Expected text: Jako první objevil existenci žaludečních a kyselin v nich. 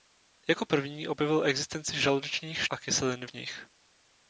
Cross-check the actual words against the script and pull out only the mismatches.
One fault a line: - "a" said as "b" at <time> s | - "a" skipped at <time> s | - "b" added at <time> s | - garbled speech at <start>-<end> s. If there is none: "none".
none